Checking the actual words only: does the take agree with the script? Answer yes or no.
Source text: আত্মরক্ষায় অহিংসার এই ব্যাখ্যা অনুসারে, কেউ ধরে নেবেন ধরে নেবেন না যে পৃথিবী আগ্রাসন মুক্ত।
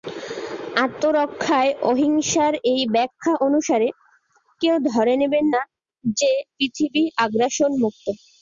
no